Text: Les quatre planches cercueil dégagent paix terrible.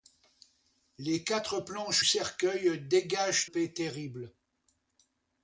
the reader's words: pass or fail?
pass